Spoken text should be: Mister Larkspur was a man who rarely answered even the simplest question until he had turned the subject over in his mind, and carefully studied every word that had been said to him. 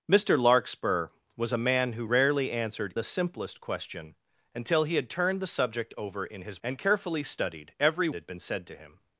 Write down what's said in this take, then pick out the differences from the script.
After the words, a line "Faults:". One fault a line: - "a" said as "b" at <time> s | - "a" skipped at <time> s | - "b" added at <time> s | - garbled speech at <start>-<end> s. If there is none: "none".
Mister Larkspur was a man who rarely answered the simplest question until he had turned the subject over in his and carefully studied every had been said to him.
Faults:
- "even" skipped at 2.9 s
- "mind" skipped at 6.6 s
- "word that" skipped at 8.1 s